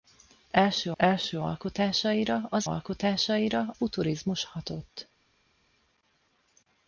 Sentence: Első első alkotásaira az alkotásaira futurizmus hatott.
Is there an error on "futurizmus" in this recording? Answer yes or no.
no